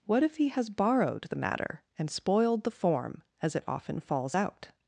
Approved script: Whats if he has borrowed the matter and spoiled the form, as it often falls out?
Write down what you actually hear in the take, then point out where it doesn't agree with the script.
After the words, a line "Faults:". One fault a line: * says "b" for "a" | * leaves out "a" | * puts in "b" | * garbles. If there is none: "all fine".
What if he has borrowed the matter and spoiled the form, as it often falls out?
Faults:
* says "What" for "Whats"